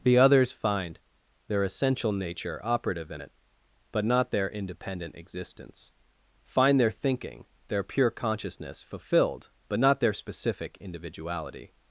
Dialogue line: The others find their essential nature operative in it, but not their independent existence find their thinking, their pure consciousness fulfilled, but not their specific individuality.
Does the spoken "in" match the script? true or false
true